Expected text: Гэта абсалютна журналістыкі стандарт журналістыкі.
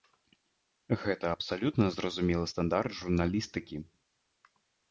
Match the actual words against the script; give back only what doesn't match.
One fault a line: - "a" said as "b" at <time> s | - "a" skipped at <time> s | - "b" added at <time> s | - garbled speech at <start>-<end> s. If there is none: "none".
- "журналістыкі" said as "зразумелы" at 2.0 s